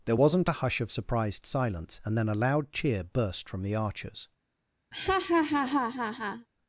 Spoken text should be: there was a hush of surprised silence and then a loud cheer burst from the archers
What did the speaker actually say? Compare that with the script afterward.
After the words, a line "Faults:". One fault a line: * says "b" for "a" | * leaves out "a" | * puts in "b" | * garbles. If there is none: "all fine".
there wasn't a hush of surprised silence and then a loud cheer burst from the archers
Faults:
* says "wasn't" for "was"